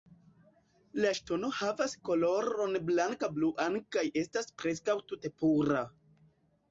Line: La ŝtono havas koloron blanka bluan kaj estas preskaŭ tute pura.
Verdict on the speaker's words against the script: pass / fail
pass